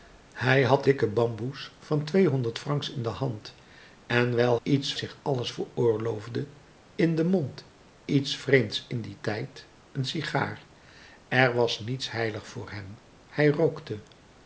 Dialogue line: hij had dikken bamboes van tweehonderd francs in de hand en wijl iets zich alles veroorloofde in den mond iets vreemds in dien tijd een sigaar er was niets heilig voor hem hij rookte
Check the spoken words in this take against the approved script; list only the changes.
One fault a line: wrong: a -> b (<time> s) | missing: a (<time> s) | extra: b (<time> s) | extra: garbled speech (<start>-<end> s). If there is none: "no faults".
no faults